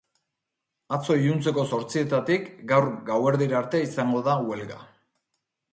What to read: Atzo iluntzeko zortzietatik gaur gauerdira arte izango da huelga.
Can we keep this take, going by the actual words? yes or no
yes